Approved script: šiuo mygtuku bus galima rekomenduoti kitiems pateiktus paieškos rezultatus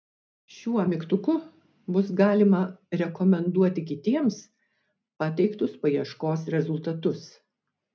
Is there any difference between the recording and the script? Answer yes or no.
no